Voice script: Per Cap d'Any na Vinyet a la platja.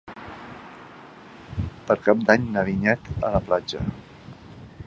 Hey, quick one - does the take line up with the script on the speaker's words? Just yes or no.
yes